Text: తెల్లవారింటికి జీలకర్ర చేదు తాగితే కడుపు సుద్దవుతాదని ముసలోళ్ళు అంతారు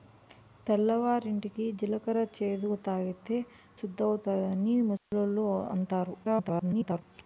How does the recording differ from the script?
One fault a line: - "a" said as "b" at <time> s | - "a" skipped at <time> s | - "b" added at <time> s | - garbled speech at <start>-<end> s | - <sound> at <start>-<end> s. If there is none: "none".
- "కడుపు" skipped at 3.4 s
- dropout at 5.0-5.1 s
- garbled speech at 6.2-7.0 s